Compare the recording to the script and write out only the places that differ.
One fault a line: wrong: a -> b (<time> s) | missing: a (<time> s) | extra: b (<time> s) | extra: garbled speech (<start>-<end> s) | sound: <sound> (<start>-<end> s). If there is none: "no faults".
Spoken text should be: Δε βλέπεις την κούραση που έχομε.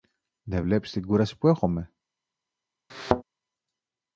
sound: thud (2.9-3.2 s)